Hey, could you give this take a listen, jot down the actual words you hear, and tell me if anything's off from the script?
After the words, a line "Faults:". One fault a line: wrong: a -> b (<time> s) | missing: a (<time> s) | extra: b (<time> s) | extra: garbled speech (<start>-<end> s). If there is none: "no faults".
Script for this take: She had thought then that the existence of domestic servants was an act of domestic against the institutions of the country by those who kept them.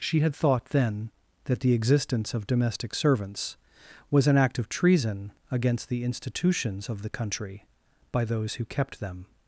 She had thought then that the existence of domestic servants was an act of treason against the institutions of the country by those who kept them.
Faults:
wrong: domestic -> treason (4.7 s)